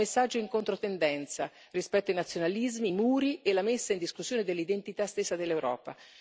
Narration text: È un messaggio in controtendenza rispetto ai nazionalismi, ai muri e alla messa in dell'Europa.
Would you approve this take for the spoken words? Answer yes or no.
no